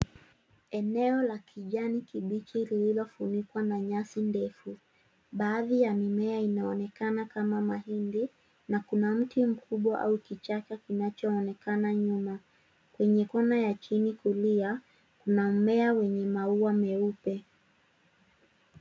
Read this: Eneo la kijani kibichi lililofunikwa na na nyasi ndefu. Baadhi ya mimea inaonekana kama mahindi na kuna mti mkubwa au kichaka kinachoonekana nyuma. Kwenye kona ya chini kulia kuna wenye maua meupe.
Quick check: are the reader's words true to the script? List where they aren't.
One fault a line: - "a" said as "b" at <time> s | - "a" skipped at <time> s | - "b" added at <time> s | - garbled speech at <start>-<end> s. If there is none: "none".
- "na" skipped at 3.8 s
- "mmea" added at 15.5 s